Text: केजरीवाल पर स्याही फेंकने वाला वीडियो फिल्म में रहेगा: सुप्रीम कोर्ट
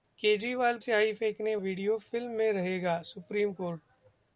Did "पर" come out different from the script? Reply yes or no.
yes